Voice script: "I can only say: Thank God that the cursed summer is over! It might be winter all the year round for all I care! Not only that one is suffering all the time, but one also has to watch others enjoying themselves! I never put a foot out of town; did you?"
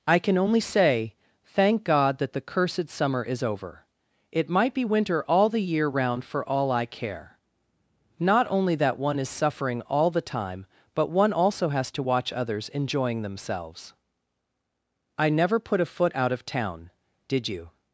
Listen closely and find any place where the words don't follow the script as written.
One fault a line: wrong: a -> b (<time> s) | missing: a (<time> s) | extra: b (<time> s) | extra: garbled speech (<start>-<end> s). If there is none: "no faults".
no faults